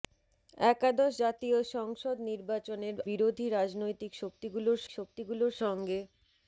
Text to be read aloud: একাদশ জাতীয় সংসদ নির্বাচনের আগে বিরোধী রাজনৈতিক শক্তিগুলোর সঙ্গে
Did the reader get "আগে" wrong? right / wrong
wrong